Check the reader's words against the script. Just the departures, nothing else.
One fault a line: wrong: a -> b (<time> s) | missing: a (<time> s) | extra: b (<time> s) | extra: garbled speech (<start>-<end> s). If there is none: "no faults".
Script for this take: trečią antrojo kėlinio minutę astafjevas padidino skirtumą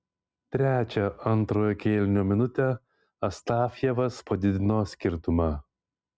no faults